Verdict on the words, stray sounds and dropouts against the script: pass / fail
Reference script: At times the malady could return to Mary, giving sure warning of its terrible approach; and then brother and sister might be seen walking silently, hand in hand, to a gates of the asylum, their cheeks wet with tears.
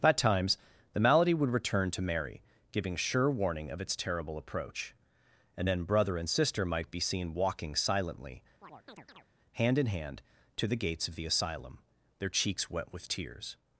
fail